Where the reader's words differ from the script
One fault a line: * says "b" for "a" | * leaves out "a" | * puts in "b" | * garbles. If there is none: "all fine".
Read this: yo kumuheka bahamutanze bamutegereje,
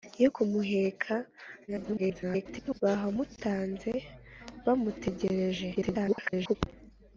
* garbles
* garbles